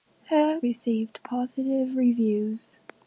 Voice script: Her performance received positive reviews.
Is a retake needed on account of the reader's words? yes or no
yes